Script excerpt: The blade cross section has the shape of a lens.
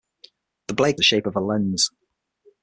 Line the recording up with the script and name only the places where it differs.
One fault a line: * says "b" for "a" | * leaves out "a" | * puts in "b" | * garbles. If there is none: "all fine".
* leaves out "cross section has"